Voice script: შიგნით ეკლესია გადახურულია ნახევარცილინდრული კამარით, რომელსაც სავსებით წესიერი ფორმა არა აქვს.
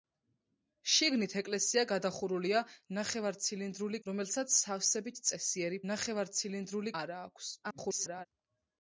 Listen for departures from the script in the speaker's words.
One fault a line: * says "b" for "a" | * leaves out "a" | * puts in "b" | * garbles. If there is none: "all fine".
* leaves out "კამარით"
* says "ნახევარცილინდრული" for "ფორმა"
* garbles